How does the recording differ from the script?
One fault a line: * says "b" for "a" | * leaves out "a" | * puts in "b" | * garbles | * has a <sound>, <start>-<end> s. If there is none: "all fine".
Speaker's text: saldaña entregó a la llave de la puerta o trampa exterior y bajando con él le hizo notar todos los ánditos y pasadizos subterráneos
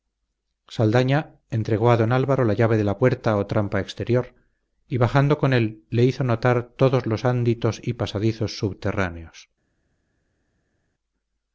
* puts in "don álvaro"